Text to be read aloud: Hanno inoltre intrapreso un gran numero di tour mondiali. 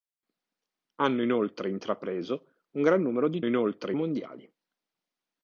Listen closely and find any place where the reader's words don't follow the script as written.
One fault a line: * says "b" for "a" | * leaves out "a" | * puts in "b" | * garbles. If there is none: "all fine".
* says "inoltre" for "tour"